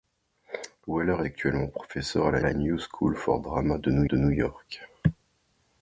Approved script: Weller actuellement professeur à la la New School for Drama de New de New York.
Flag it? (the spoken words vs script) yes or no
no